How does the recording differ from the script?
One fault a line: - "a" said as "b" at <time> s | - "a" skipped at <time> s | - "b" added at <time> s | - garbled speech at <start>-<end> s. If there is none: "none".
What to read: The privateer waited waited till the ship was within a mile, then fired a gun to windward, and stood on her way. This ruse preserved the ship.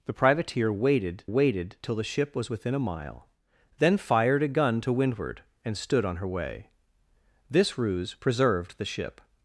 none